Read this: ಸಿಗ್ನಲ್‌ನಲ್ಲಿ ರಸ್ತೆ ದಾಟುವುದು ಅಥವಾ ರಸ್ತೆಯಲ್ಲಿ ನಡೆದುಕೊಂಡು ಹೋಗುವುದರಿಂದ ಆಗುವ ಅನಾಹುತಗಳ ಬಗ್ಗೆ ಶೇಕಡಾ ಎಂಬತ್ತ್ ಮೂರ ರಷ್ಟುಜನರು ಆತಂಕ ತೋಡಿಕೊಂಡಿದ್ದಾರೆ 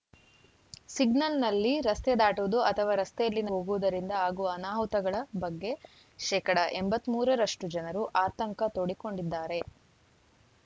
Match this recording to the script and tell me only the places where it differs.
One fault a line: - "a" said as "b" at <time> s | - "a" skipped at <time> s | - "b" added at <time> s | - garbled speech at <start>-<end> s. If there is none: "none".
- "ನಡೆದುಕೊಂಡು" skipped at 3.4 s